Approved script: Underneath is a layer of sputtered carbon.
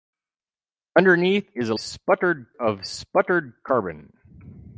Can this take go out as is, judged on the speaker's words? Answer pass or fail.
fail